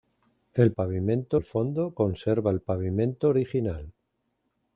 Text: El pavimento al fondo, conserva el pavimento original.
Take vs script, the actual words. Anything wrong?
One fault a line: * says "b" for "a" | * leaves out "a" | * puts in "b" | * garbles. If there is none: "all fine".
all fine